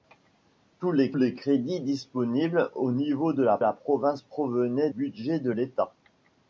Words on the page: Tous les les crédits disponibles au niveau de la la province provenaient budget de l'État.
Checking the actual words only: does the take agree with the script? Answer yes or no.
yes